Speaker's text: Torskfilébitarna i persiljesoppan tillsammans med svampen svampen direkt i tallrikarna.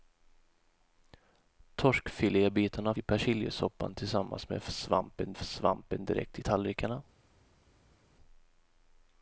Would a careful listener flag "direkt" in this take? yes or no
no